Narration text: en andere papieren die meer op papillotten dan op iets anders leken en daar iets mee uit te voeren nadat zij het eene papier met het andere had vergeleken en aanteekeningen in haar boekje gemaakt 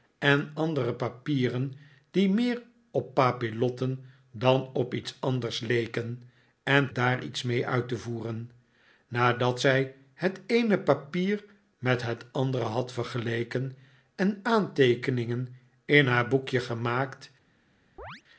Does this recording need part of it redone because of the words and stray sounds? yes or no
yes